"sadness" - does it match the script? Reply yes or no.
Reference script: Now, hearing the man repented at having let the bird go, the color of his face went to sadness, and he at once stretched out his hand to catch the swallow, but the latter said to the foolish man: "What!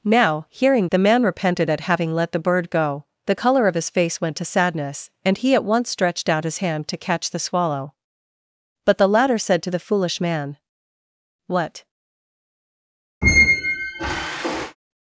yes